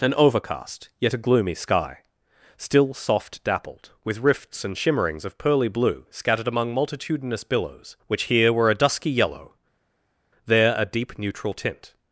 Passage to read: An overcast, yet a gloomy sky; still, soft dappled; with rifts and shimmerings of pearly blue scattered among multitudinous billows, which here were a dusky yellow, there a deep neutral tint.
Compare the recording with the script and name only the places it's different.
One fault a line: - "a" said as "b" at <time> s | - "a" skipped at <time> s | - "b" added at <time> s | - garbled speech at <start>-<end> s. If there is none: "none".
none